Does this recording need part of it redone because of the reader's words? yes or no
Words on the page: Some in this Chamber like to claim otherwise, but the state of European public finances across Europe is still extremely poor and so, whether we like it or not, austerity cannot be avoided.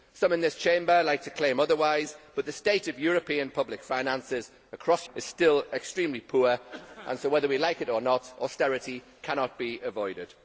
yes